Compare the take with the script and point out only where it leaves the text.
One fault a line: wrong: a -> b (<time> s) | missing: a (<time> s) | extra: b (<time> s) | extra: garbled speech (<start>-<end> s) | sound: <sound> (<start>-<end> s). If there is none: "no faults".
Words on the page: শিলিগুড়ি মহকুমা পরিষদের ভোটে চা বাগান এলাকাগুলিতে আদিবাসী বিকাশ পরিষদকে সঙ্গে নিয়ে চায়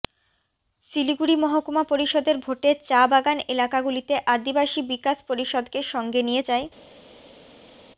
no faults